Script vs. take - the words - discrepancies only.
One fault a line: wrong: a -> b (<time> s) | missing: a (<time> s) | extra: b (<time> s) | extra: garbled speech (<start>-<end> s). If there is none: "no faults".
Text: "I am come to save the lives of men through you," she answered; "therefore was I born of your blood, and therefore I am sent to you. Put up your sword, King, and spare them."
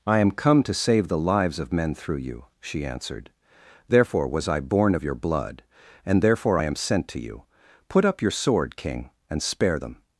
no faults